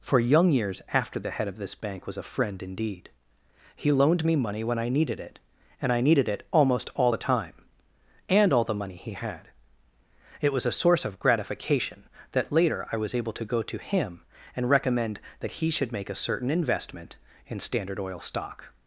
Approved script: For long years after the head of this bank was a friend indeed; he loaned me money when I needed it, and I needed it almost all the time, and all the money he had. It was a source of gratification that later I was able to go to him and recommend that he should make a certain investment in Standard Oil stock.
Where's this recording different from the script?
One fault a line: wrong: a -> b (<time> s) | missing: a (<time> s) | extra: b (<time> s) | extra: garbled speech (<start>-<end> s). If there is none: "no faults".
wrong: long -> young (0.2 s)